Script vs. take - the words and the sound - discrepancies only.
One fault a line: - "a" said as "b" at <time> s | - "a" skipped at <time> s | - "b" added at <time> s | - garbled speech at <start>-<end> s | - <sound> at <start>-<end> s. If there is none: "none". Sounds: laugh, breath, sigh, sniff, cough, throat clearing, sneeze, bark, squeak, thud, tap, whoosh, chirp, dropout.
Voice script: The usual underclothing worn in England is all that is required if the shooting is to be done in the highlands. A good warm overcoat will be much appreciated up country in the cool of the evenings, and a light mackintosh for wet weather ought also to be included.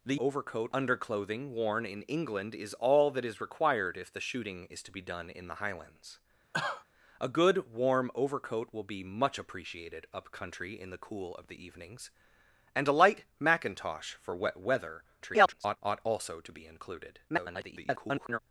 - "usual" said as "overcoat" at 0.2 s
- cough at 6.5-6.8 s
- garbled speech at 15.2-15.8 s
- garbled speech at 17.3-18.4 s